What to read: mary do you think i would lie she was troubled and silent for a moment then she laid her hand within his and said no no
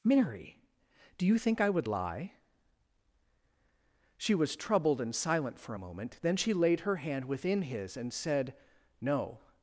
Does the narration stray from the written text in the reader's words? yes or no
yes